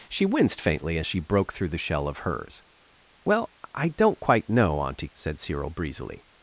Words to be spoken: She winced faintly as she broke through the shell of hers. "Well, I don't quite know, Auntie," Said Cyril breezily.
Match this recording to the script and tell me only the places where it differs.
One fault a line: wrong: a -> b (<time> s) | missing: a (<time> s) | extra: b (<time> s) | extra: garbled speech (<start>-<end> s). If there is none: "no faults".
no faults